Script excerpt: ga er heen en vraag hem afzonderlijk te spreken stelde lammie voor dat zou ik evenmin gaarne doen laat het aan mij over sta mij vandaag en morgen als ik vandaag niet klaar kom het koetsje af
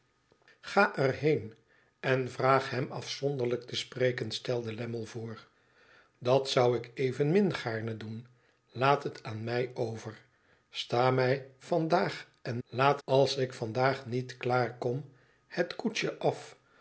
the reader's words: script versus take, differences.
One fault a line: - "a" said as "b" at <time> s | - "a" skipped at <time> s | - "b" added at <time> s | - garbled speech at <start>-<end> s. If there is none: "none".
- "morgen" said as "laat" at 12.7 s